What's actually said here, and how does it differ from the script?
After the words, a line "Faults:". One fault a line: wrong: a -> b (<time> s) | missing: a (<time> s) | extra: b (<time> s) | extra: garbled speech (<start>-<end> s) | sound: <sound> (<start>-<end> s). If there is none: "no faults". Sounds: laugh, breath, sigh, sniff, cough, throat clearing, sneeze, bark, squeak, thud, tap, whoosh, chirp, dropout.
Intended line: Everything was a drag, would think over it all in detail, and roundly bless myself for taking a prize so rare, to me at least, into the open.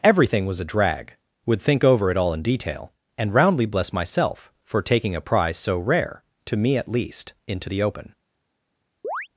Everything was a drag, would think over it all in detail, and roundly bless myself for taking a prize so rare, to me at least, into the open.
Faults:
sound: chirp (9.0-9.3 s)